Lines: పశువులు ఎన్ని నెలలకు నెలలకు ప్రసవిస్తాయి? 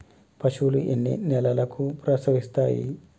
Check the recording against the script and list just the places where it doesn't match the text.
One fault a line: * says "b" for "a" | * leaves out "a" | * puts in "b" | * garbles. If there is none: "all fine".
* leaves out "నెలలకు"